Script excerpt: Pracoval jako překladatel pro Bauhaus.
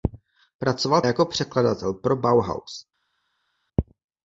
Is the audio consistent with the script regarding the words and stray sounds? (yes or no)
yes